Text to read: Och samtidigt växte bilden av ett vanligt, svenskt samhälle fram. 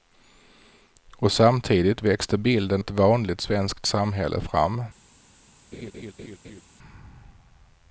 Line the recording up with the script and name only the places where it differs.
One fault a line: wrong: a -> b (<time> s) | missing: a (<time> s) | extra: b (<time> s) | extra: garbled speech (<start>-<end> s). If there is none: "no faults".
missing: av (2.8 s)